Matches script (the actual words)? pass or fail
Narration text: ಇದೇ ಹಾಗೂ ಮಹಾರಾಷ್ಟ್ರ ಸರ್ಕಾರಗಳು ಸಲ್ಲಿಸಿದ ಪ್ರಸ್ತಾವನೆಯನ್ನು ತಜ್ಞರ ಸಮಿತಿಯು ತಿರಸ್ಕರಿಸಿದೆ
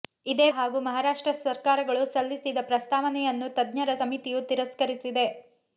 pass